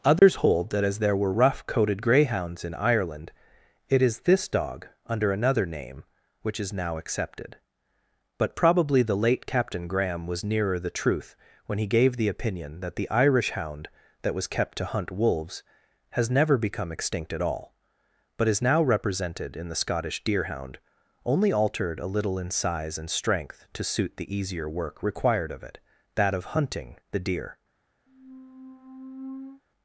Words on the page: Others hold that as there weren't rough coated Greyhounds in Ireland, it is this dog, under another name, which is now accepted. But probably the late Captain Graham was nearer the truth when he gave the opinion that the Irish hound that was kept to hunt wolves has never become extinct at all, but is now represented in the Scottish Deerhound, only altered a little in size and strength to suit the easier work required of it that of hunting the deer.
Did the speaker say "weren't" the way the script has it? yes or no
no